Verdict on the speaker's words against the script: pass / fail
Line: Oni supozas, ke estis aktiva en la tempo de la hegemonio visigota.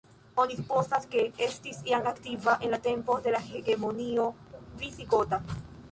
fail